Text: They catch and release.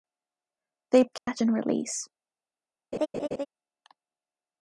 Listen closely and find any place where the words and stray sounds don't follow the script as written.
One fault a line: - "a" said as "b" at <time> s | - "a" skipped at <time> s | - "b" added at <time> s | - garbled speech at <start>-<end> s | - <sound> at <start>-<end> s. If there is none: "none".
- dropout at 1.2-1.3 s
- laugh at 2.9-3.5 s